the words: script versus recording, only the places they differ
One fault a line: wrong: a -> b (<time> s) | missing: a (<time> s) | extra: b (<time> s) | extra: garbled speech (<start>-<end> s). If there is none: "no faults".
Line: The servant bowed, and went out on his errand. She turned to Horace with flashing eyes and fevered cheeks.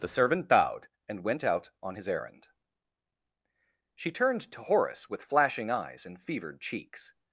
no faults